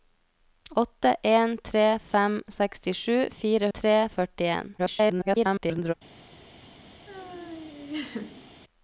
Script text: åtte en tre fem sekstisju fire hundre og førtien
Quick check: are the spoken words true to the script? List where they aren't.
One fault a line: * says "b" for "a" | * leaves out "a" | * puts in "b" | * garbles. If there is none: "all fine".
* says "tre" for "hundre"
* garbles